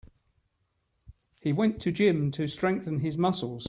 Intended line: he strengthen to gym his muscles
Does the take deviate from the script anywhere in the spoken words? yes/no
yes